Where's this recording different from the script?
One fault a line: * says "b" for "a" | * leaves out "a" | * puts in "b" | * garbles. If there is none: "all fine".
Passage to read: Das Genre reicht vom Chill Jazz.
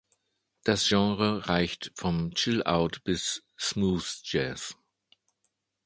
* puts in "Out bis Smooth"